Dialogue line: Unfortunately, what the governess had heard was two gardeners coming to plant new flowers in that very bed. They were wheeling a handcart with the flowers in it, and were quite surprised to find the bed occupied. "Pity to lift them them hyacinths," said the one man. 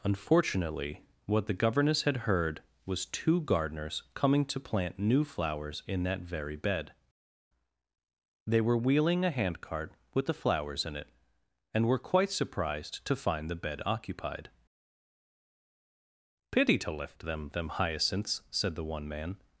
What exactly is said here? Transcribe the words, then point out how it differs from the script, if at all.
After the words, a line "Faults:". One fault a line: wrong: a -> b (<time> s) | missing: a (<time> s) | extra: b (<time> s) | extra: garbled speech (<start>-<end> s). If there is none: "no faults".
Unfortunately, what the governess had heard was two gardeners coming to plant new flowers in that very bed. They were wheeling a handcart with the flowers in it, and were quite surprised to find the bed occupied. "Pity to lift them them hyacinths," said the one man.
Faults:
no faults